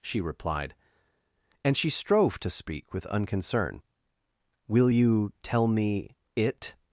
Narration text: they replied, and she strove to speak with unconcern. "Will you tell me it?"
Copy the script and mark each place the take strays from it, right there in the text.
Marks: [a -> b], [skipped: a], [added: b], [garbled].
[they -> she] replied, and she strove to speak with unconcern. "Will you tell me it?"